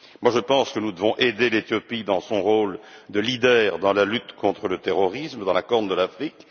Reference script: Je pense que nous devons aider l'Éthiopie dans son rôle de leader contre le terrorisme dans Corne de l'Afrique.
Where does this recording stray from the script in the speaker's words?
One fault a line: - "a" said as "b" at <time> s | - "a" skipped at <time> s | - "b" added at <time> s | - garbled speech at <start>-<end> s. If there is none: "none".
- "dans la lutte" added at 3.8 s
- "la" added at 5.5 s